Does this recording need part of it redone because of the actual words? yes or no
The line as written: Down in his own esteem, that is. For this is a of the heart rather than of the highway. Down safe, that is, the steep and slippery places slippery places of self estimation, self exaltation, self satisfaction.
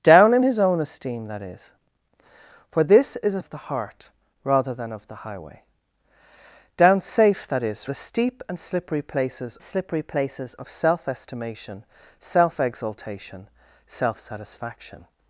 no